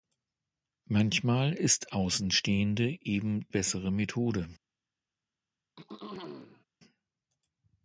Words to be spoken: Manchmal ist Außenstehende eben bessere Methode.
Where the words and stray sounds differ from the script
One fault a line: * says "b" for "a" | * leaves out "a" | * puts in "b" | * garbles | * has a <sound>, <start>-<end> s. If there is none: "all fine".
* has a throat clearing, 5.8-6.7 s